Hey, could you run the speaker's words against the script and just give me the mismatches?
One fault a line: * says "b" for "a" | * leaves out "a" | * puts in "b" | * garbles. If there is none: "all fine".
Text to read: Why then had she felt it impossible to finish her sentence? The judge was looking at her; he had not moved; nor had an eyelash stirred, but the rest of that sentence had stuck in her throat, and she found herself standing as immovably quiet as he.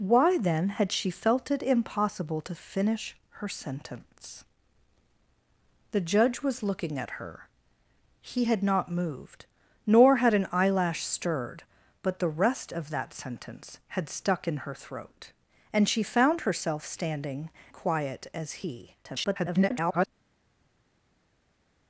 * leaves out "as immovably"
* garbles